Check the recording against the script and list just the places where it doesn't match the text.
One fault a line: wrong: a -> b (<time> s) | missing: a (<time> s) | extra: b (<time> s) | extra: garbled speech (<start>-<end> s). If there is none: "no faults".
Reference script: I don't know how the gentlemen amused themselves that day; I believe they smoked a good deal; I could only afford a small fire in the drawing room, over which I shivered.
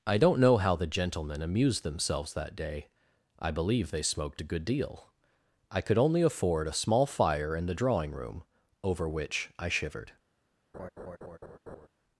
no faults